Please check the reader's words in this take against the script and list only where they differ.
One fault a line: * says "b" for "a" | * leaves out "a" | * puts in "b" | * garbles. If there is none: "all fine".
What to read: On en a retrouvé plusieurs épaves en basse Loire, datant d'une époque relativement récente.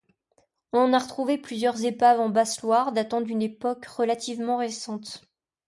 all fine